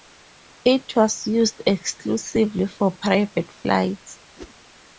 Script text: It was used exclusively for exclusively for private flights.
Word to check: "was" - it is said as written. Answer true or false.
true